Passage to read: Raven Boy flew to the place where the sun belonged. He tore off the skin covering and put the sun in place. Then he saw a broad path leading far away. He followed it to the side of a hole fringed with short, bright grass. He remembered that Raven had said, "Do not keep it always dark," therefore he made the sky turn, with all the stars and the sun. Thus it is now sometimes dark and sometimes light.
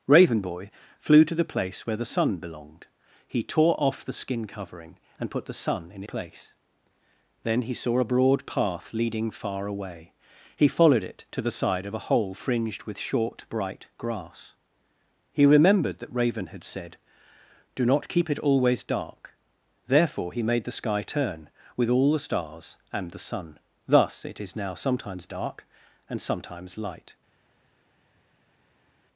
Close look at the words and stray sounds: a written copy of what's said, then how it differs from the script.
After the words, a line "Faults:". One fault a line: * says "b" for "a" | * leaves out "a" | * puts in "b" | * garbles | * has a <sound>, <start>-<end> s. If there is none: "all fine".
Raven Boy flew to the place where the sun belonged. He tore off the skin covering and put the sun in place. Then he saw a broad path leading far away. He followed it to the side of a hole fringed with short, bright grass. He remembered that Raven had said, "Do not keep it always dark," therefore he made the sky turn, with all the stars and the sun. Thus it is now sometimes dark and sometimes light.
Faults:
all fine